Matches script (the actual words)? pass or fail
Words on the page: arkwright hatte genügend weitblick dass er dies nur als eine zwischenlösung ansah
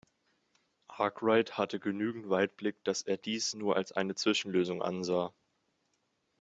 pass